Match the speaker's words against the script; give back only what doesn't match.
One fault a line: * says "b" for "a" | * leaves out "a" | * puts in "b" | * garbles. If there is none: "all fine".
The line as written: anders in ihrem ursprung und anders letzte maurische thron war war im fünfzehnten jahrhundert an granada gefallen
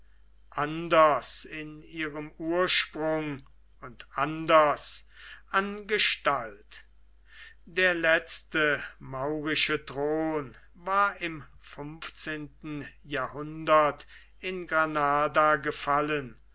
* puts in "an gestalt der"
* leaves out "war"
* says "in" for "an"